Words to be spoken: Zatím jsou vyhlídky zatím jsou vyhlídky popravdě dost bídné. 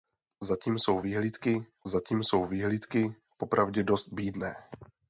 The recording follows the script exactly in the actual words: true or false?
true